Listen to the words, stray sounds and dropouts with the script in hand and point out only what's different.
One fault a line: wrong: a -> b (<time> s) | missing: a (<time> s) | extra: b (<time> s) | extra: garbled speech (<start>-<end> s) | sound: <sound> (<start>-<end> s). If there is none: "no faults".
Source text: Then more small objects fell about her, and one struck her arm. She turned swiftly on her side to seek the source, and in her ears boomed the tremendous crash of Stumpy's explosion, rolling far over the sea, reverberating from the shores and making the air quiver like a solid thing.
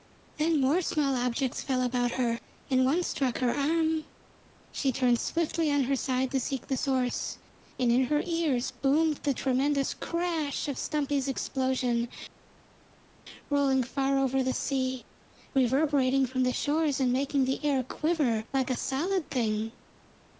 no faults